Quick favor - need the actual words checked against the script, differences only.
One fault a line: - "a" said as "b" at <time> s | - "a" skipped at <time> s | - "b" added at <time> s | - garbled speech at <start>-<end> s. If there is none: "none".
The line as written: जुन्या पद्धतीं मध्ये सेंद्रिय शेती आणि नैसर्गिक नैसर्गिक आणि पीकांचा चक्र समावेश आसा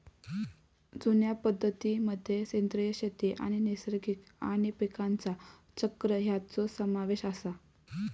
- "नैसर्गिक" skipped at 4.2 s
- "ह्यांचो" added at 6.2 s